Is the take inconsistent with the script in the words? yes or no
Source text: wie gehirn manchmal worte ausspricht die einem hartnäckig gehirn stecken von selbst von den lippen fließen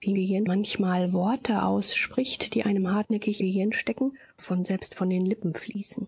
no